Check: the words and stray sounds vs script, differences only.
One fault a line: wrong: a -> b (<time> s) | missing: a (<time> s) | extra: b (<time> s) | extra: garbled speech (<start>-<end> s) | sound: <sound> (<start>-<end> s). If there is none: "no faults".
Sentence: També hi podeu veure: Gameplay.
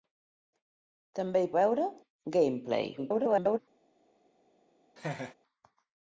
missing: podeu (1.5 s)
extra: garbled speech (3.0-3.6 s)
sound: laugh (5.0-5.3 s)